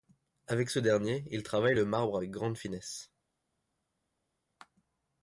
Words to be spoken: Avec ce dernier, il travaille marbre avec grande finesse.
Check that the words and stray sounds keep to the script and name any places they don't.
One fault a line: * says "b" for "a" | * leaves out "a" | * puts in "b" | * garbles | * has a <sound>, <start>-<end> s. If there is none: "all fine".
* puts in "le"